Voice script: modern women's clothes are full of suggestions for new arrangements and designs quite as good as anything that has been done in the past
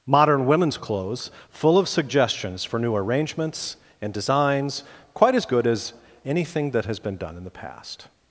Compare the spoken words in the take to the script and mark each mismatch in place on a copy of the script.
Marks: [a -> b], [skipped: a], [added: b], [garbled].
modern women's clothes [skipped: are] full of suggestions for new arrangements and designs quite as good as anything that has been done in the past